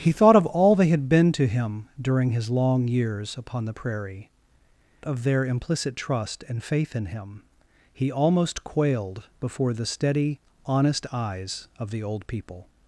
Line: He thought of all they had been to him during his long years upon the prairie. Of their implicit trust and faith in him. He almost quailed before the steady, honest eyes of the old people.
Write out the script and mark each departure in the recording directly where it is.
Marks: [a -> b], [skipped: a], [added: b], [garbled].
He thought of all they had been to him during his long years upon the prairie. Of their implicit trust and faith in him. He almost quailed before the steady, honest eyes of the old people.